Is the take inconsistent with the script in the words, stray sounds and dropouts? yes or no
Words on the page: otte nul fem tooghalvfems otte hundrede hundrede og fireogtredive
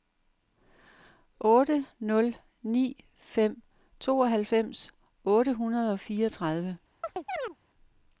yes